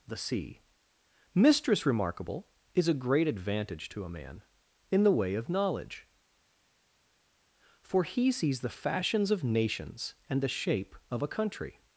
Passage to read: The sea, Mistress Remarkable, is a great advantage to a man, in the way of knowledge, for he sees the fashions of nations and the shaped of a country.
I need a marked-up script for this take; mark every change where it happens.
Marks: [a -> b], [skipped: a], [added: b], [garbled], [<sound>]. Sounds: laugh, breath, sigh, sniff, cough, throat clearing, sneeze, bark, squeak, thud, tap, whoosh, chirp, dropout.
The sea, Mistress Remarkable, is a great advantage to a man, in the way of knowledge, for he sees the fashions of nations and the [shaped -> shape] of a country.